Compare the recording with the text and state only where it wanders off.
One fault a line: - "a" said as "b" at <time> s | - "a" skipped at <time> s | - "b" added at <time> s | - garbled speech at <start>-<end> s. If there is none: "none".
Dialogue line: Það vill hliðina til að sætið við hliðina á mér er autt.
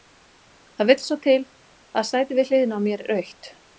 - "hliðina" said as "svo" at 1.0 s